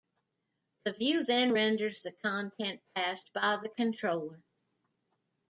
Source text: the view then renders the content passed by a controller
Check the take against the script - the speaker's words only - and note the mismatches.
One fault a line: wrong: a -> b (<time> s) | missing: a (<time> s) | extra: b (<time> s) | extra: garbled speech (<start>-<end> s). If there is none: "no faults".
wrong: a -> the (3.6 s)